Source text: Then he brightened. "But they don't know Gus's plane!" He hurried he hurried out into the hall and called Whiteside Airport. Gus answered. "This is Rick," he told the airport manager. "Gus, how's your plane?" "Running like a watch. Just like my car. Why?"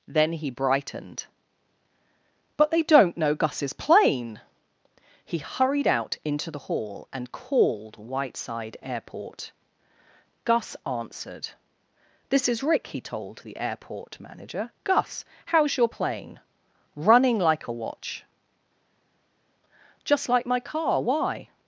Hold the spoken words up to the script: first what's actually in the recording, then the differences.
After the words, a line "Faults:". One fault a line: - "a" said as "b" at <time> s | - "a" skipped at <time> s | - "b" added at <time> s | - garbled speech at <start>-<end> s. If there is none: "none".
Then he brightened. "But they don't know Gus's plane!" He hurried out into the hall and called Whiteside Airport. Gus answered. "This is Rick," he told the airport manager. "Gus, how's your plane?" "Running like a watch. Just like my car. Why?"
Faults:
- "he hurried" skipped at 5.8 s